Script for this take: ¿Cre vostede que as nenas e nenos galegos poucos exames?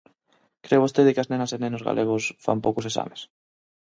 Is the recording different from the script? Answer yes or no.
yes